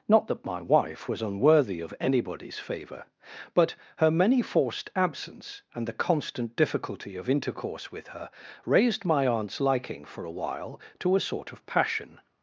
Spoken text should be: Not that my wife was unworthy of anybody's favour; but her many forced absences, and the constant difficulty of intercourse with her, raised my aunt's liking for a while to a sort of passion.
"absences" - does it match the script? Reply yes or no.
no